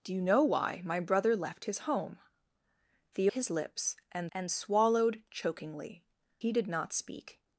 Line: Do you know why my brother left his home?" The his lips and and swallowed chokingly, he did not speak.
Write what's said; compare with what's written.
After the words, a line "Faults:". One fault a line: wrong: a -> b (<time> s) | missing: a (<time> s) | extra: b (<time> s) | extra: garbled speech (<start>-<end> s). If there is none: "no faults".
Do you know why my brother left his home?" The his lips and and swallowed chokingly, he did not speak.
Faults:
no faults